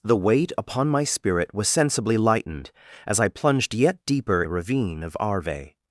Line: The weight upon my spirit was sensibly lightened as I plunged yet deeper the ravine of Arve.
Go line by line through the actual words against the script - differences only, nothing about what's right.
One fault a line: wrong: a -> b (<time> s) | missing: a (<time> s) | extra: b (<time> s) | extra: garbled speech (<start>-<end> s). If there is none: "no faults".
no faults